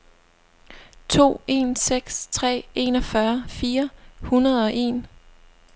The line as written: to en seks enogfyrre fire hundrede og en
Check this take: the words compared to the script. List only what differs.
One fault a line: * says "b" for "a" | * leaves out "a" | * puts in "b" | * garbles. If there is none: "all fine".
* puts in "tre"